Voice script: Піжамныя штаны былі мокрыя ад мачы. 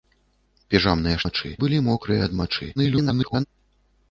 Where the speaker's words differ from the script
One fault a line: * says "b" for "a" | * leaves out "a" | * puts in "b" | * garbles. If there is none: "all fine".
* says "мачы" for "штаны"
* garbles